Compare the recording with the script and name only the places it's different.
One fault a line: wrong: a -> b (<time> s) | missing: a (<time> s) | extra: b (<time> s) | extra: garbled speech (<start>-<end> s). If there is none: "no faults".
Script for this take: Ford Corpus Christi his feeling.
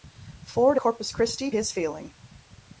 no faults